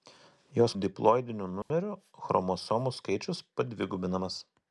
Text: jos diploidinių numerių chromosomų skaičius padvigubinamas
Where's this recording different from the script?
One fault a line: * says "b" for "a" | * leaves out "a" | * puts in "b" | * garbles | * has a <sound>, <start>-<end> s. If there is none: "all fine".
* has a dropout, 1.6-1.7 s